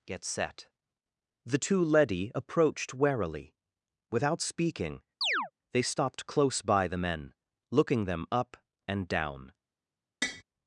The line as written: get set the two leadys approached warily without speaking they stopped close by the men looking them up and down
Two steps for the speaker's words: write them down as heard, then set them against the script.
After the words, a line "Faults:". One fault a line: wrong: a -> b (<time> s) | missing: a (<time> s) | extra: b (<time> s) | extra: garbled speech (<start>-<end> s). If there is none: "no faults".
get set the two leady approached warily without speaking they stopped close by the men looking them up and down
Faults:
wrong: leadys -> leady (1.8 s)